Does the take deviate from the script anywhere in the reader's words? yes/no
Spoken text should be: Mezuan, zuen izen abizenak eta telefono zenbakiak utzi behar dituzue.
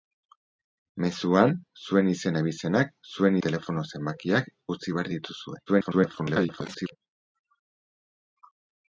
yes